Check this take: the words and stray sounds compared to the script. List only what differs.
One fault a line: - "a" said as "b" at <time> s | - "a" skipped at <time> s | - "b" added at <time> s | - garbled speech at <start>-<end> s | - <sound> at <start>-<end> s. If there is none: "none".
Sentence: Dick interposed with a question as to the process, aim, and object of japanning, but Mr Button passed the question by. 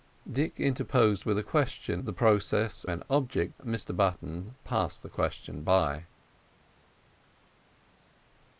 - "as to" skipped at 2.0 s
- "aim" skipped at 2.8 s
- "of japanning but" skipped at 3.6 s